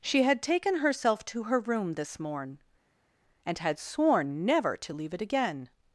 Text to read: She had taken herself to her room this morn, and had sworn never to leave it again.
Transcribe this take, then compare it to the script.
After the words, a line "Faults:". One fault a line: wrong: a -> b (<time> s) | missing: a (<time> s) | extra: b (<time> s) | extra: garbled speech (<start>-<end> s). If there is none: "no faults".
She had taken herself to her room this morn, and had sworn never to leave it again.
Faults:
no faults